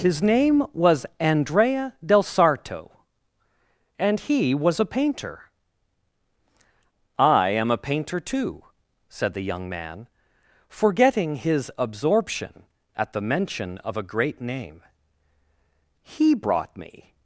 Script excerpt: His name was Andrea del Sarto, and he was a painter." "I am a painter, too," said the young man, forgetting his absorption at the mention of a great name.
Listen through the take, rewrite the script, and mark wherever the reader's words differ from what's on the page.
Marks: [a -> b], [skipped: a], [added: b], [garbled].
His name was Andrea del Sarto, and he was a painter." "I am a painter, too," said the young man, forgetting his absorption at the mention of a great name. [added: He brought me]